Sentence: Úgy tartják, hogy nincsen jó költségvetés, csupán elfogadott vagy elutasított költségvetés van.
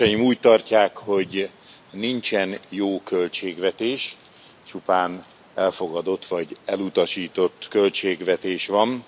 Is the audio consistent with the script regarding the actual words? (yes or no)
yes